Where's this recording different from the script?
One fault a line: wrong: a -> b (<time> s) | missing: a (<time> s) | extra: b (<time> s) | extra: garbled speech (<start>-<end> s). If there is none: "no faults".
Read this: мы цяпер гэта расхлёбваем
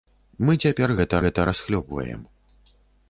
extra: гэта (1.3 s)